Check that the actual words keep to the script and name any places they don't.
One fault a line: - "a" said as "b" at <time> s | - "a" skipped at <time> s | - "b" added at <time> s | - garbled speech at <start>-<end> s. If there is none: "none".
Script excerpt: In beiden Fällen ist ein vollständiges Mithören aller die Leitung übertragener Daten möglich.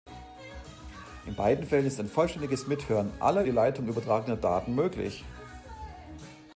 none